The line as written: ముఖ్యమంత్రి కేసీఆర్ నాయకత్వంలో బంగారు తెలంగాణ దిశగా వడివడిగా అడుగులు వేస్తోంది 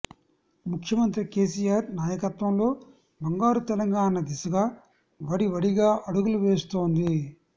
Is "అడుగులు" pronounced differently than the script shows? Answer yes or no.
no